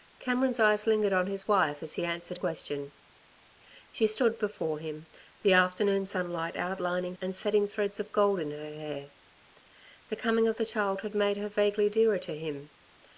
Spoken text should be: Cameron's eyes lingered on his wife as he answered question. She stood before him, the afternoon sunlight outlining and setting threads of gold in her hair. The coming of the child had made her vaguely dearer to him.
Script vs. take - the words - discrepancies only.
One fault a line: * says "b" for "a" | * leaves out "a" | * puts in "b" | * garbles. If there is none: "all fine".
all fine